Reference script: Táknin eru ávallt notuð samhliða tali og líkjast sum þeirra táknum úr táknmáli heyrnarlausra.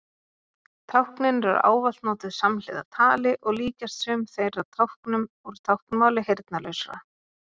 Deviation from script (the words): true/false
false